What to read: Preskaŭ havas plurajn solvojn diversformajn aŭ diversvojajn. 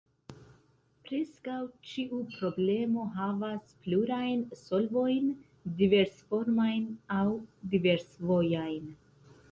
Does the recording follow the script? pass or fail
fail